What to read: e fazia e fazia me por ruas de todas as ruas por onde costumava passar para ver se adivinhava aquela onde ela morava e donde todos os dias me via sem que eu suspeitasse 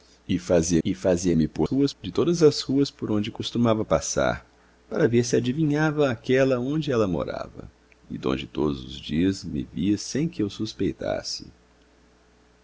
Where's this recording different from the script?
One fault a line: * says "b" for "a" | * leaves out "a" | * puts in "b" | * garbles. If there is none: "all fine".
all fine